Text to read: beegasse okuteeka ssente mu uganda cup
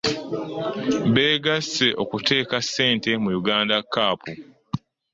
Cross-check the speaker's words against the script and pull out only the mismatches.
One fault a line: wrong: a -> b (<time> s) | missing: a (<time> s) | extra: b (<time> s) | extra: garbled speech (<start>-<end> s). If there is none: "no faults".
no faults